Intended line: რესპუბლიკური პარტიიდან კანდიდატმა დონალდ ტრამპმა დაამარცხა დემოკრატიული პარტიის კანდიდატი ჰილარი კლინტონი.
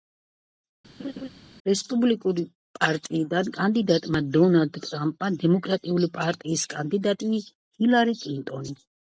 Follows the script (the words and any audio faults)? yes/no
no